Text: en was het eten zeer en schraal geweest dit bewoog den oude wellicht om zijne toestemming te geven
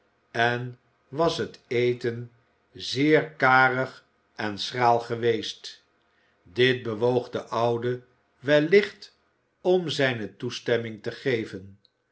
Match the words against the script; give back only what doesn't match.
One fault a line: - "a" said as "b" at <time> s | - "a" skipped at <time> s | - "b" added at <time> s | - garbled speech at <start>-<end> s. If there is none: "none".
- "karig" added at 3.3 s